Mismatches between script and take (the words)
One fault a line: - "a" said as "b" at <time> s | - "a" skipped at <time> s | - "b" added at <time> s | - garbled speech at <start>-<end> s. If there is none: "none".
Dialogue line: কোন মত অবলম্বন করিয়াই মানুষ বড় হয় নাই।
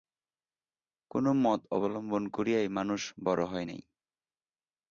none